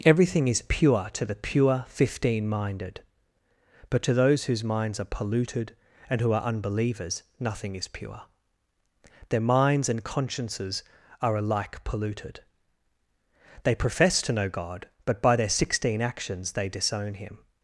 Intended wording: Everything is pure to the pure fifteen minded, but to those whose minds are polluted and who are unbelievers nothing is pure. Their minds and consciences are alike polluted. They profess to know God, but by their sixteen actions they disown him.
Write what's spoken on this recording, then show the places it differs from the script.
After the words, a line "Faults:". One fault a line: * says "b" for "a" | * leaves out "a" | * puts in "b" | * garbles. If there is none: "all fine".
Everything is pure to the pure fifteen minded, but to those whose minds are polluted and who are unbelievers nothing is pure. Their minds and consciences are alike polluted. They profess to know God, but by their sixteen actions they disown him.
Faults:
all fine